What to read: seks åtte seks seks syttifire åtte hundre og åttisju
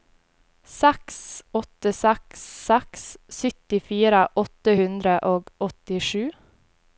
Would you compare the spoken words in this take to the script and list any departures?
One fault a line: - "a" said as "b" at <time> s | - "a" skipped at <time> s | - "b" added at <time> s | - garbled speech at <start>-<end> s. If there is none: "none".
none